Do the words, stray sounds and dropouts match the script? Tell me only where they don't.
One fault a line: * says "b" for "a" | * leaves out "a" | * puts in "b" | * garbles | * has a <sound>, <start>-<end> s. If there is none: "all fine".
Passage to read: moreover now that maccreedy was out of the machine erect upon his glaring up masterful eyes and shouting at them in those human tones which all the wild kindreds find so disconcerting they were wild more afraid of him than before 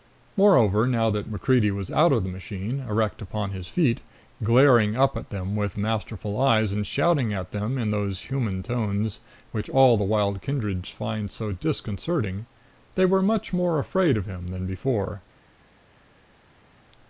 * puts in "feet"
* puts in "at them with"
* says "much" for "wild"